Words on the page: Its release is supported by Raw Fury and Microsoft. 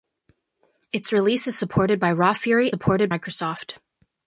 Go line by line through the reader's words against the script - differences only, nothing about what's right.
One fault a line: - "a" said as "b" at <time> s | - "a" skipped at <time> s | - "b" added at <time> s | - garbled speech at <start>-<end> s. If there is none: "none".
- "and" said as "supported" at 2.7 s